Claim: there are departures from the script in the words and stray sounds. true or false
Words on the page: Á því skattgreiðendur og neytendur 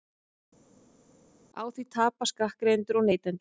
true